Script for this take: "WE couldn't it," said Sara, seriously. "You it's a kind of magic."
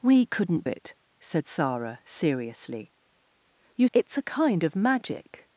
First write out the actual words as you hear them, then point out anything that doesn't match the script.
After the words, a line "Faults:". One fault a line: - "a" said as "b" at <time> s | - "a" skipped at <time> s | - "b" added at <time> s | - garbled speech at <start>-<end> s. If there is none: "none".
"WE couldn't it," said Sara, seriously. "You it's a kind of magic."
Faults:
none